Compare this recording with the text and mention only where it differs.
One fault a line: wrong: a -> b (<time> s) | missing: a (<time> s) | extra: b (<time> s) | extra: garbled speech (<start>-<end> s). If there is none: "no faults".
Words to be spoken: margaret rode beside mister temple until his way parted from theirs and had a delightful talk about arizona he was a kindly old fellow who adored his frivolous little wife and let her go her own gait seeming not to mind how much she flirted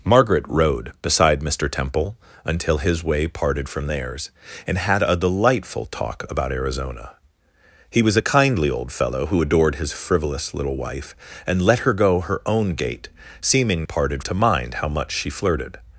wrong: not -> parted (13.8 s)